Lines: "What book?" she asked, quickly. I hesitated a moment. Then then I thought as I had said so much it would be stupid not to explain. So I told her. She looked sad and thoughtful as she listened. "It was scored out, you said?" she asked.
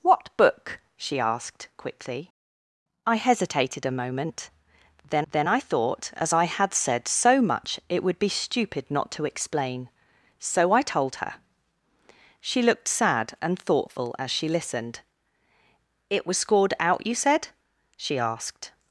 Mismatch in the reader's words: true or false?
false